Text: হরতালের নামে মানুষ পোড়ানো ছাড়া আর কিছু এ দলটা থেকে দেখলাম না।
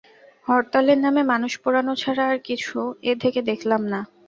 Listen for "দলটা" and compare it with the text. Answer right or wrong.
wrong